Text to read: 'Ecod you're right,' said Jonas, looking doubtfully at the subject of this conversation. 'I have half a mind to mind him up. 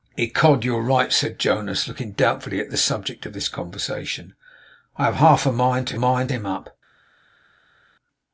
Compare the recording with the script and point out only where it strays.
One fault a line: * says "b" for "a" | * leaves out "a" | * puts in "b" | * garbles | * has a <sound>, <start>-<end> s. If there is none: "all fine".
all fine